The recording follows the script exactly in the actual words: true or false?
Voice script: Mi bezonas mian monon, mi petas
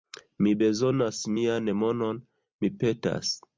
true